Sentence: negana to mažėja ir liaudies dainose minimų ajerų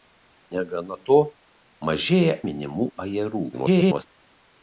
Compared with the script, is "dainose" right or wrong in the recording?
wrong